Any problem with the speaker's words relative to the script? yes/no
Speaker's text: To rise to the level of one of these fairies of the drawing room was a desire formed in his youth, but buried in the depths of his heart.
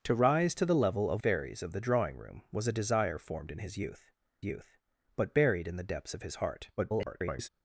yes